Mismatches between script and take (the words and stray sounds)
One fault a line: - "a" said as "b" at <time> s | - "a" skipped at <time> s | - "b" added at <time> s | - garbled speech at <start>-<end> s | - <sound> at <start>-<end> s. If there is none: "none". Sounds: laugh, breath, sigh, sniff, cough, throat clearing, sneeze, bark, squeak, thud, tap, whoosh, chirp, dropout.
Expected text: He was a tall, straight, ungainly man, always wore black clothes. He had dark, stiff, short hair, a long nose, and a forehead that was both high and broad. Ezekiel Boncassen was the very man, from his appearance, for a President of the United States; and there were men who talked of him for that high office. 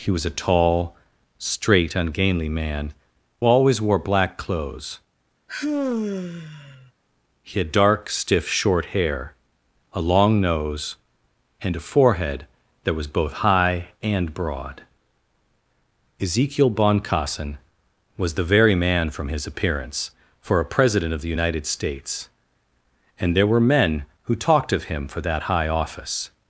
- sigh at 5.5-6.9 s